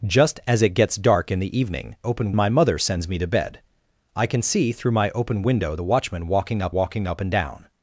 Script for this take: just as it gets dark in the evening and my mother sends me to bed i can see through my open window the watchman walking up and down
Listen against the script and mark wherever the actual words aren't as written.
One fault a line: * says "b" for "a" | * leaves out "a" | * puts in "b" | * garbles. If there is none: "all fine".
* says "open" for "and"
* puts in "walking up"